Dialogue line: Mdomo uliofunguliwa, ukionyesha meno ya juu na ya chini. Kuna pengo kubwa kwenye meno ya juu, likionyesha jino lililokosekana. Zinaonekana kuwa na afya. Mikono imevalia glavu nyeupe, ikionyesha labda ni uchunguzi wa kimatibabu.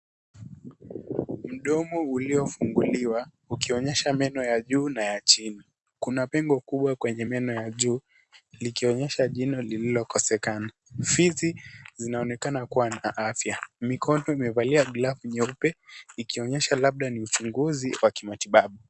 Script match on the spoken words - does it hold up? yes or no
no